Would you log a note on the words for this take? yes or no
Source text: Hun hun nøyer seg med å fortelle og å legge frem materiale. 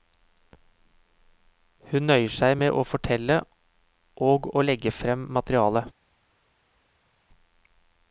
yes